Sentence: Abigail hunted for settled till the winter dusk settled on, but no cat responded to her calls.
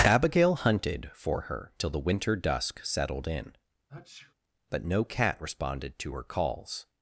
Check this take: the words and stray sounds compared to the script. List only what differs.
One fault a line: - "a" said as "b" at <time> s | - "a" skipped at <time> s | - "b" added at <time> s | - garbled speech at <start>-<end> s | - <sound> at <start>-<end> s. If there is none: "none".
- "settled" said as "her" at 1.4 s
- "on" said as "in" at 3.3 s
- sneeze at 3.9-4.3 s